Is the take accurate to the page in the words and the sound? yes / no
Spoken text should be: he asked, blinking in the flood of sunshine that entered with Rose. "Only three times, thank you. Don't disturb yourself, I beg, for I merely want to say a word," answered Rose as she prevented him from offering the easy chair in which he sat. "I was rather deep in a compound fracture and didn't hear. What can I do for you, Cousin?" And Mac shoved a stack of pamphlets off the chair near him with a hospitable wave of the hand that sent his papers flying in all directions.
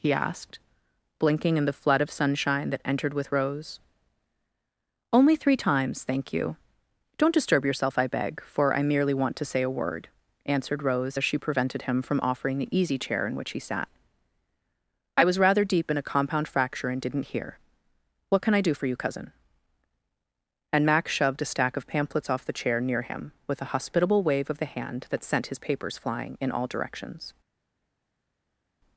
yes